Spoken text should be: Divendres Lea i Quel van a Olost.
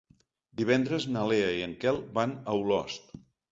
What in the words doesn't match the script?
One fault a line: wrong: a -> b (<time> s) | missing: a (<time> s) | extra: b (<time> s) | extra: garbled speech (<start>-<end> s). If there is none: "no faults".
extra: na (1.1 s)
extra: en (1.7 s)